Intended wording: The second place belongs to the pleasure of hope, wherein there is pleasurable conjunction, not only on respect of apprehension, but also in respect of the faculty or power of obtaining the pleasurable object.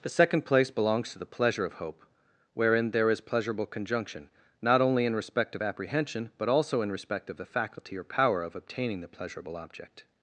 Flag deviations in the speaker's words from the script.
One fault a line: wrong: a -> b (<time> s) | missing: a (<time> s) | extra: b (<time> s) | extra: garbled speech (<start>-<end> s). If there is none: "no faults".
wrong: on -> in (5.0 s)